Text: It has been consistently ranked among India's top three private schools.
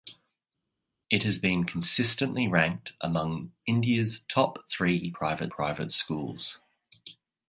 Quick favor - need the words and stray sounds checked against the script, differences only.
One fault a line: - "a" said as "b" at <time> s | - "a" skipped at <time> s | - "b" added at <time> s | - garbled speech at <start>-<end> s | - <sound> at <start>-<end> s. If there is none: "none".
- "private" added at 5.5 s